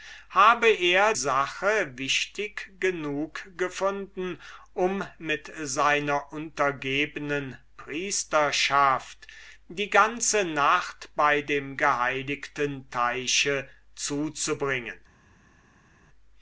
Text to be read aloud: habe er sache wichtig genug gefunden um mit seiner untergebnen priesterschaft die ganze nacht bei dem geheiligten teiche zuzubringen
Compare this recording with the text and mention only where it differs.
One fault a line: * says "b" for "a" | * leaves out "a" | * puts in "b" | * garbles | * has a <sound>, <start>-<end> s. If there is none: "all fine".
all fine